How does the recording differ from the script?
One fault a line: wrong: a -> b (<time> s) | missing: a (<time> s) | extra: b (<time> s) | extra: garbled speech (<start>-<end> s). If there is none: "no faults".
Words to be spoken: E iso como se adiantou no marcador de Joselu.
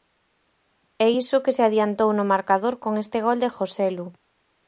wrong: como -> que (1.4 s)
extra: con este gol (2.8 s)